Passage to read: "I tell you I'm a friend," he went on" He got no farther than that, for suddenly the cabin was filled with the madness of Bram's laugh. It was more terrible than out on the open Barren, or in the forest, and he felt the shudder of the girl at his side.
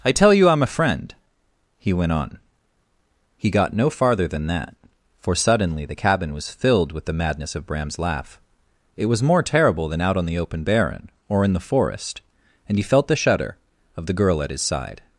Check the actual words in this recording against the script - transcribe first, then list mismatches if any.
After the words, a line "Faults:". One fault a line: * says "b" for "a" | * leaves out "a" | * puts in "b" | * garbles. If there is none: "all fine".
"I tell you I'm a friend," he went on" He got no farther than that, for suddenly the cabin was filled with the madness of Bram's laugh. It was more terrible than out on the open Barren, or in the forest, and he felt the shudder of the girl at his side.
Faults:
all fine